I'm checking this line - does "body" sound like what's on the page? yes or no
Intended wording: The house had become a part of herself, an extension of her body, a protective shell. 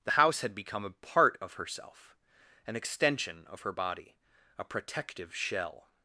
yes